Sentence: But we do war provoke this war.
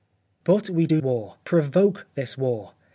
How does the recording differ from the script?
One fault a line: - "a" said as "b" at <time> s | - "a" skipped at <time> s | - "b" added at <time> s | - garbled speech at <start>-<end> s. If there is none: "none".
none